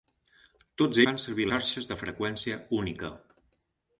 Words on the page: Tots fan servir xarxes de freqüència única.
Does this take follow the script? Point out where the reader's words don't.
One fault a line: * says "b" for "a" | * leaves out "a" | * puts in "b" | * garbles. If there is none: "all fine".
all fine